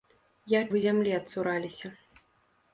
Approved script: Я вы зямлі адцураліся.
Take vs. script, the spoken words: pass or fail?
pass